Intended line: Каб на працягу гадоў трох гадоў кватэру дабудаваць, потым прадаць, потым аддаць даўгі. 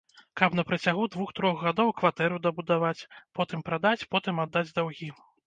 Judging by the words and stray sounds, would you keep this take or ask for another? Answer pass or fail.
fail